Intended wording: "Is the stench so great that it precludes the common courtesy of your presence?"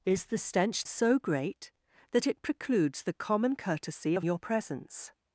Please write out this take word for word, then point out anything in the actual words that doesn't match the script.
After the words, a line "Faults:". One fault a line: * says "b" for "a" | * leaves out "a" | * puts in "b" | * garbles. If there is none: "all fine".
"Is the stench so great that it precludes the common courtesy of your presence?"
Faults:
all fine